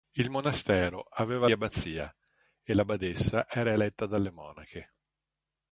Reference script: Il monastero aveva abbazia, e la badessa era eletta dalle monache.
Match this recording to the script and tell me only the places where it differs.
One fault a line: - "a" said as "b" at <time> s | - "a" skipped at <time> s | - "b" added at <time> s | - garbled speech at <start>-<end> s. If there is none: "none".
none